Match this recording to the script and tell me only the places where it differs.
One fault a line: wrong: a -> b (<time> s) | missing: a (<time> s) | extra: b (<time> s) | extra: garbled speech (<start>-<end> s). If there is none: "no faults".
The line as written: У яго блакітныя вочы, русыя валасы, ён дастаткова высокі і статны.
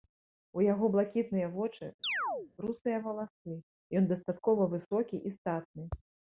no faults